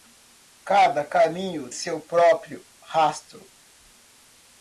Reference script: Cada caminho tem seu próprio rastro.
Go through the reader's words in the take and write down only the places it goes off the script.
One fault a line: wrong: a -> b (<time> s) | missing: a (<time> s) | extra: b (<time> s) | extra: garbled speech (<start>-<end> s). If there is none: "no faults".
missing: tem (1.7 s)